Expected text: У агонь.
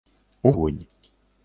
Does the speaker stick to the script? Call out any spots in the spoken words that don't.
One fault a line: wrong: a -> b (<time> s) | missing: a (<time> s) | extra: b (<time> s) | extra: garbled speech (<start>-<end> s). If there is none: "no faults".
no faults